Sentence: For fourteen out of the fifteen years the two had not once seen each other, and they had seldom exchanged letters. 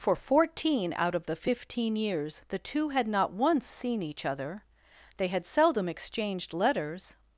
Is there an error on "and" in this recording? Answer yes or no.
yes